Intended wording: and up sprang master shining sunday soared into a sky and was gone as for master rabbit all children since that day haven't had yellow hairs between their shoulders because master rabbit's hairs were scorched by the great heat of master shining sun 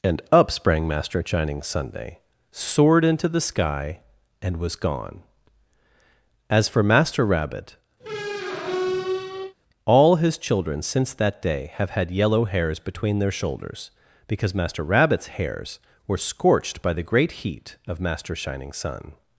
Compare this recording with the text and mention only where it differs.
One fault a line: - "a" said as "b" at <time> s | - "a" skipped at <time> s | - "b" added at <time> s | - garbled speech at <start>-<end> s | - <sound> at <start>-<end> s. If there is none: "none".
- "a" said as "the" at 3.3 s
- squeak at 8.0-9.5 s
- "his" added at 10.2 s
- "haven't" said as "have" at 11.8 s